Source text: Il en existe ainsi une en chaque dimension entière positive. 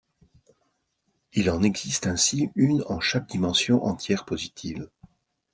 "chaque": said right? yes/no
yes